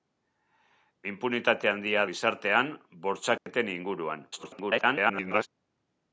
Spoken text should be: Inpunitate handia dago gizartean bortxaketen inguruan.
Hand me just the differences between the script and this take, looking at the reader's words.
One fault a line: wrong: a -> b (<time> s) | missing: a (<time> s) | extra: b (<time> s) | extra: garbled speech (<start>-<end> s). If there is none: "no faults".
missing: dago (2.0 s)
extra: garbled speech (4.3-5.5 s)